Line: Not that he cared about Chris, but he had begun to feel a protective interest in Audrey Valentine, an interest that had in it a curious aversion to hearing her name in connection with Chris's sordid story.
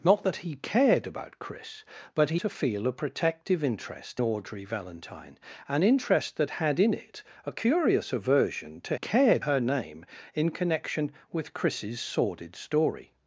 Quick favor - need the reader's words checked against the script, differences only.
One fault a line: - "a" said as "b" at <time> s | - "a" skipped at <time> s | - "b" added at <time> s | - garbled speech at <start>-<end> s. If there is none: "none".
- "had begun" skipped at 2.4 s
- "in" skipped at 4.2 s
- "hearing" said as "cared" at 8.9 s